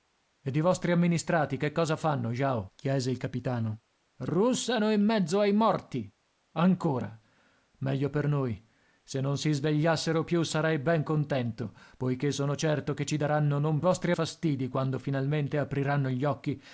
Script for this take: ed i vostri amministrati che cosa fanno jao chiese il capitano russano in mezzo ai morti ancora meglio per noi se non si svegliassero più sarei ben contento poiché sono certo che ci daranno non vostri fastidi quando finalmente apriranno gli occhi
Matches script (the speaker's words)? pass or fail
pass